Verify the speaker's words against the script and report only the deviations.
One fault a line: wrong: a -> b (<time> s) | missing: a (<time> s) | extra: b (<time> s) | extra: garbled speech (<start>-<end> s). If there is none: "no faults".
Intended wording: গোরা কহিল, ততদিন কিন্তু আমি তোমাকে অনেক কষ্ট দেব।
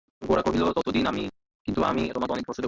no faults